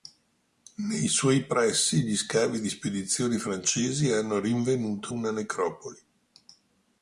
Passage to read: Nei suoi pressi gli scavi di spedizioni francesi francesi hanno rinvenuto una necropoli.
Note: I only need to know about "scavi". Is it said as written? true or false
true